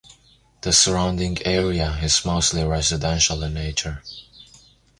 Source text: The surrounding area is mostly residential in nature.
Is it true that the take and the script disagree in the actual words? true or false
false